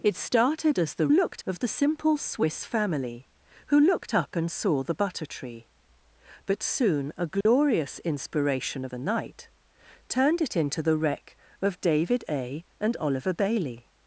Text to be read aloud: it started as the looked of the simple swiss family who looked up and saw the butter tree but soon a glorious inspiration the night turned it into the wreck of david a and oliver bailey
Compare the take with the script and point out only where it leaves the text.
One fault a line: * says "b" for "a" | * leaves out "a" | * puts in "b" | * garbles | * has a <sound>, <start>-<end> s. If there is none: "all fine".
* has a dropout, 7.4-7.5 s